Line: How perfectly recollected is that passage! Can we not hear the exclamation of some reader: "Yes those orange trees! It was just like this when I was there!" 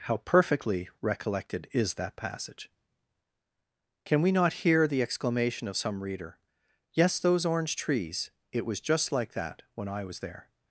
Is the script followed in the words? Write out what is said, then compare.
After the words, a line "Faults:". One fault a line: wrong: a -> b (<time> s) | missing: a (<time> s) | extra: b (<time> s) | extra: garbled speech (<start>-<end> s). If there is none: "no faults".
How perfectly recollected is that passage! Can we not hear the exclamation of some reader: "Yes those orange trees! It was just like that when I was there!"
Faults:
wrong: this -> that (9.3 s)